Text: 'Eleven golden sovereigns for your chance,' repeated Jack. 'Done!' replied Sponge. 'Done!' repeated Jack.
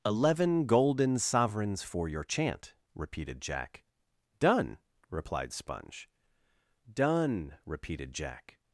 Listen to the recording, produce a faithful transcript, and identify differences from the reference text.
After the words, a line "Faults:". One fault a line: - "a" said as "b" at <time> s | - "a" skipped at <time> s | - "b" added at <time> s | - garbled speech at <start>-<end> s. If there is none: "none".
'Eleven golden sovereigns for your chant,' repeated Jack. 'Done!' replied Sponge. 'Done!' repeated Jack.
Faults:
- "chance" said as "chant" at 2.2 s